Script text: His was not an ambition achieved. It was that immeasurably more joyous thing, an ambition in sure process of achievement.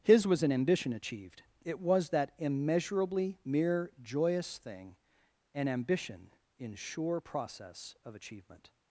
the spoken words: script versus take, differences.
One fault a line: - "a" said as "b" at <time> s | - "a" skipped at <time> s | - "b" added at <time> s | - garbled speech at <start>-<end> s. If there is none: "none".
- "not" skipped at 0.4 s
- "more" said as "mere" at 3.5 s